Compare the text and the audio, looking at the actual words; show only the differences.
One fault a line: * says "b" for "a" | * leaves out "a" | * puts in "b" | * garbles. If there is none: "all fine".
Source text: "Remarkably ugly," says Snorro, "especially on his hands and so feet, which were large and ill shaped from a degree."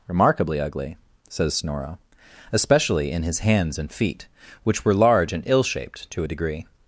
* says "in" for "on"
* leaves out "so"
* says "to" for "from"